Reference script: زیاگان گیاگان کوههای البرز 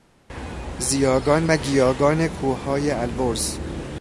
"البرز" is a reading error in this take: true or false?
false